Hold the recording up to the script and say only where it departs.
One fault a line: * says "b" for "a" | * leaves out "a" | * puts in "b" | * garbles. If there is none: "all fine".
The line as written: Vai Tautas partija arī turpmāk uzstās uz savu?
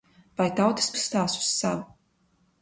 * leaves out "partija arī turpmāk"